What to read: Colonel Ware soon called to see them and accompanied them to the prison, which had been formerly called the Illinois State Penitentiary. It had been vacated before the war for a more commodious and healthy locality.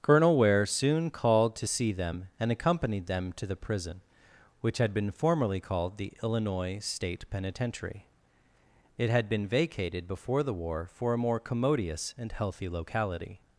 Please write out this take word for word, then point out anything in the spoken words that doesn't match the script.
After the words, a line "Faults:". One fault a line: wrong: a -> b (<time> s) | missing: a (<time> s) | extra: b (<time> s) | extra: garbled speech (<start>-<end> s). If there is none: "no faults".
Colonel Ware soon called to see them and accompanied them to the prison, which had been formerly called the Illinois State Penitentiary. It had been vacated before the war for a more commodious and healthy locality.
Faults:
no faults